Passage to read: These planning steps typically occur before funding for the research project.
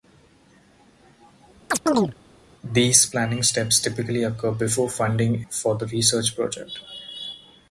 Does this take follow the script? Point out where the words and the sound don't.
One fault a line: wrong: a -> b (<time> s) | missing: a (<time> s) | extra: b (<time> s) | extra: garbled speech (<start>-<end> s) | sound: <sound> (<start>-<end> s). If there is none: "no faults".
sound: chirp (1.7-2.1 s)